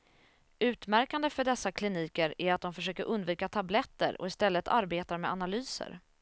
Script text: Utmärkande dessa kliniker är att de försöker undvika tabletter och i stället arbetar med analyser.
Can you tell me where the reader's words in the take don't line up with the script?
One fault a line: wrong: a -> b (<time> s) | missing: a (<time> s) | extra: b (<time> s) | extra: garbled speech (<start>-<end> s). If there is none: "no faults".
extra: för (1.3 s)